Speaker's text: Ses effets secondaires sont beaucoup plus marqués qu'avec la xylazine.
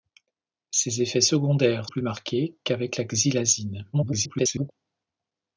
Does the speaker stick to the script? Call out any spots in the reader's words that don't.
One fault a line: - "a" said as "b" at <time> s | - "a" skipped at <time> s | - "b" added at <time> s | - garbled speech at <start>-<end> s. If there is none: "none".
- "sont beaucoup" skipped at 1.9 s
- garbled speech at 3.9-4.7 s